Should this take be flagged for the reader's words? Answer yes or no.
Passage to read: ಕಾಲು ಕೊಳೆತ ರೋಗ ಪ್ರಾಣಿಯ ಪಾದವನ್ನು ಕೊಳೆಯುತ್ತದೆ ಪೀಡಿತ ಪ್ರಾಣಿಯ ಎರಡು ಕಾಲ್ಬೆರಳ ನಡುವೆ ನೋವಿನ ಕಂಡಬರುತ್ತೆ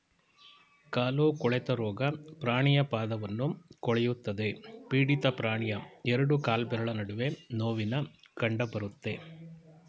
no